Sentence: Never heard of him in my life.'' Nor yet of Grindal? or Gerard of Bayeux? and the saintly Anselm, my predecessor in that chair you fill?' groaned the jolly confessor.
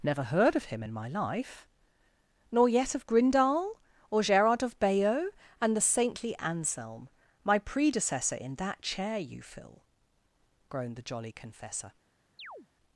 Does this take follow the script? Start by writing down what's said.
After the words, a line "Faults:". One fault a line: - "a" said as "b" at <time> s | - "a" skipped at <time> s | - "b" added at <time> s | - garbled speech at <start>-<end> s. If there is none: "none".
Never heard of him in my life.'' Nor yet of Grindal? or Gerard of Bayeux? and the saintly Anselm, my predecessor in that chair you fill?' groaned the jolly confessor.
Faults:
none